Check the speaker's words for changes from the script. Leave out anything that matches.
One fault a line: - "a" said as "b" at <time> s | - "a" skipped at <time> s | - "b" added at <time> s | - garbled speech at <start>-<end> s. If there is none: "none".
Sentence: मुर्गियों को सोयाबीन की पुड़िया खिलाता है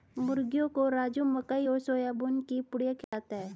- "राजू मकई और" added at 0.9 s